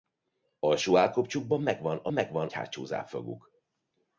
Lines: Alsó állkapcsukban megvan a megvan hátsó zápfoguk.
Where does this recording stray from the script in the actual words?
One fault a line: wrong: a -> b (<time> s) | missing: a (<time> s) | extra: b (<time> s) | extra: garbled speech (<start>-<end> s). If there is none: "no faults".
no faults